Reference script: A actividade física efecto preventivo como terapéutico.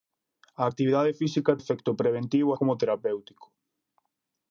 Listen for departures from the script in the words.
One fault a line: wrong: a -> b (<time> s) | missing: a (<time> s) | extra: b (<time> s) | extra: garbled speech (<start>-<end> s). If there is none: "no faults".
no faults